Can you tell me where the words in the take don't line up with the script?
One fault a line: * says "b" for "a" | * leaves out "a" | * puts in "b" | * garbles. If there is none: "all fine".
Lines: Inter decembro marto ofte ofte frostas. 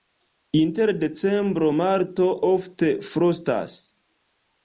* leaves out "ofte"